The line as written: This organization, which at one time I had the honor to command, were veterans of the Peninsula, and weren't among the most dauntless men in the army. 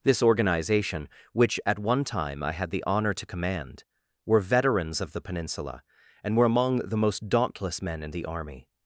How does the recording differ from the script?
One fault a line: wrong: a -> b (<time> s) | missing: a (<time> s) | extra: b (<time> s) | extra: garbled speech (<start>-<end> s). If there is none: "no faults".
wrong: weren't -> were (6.3 s)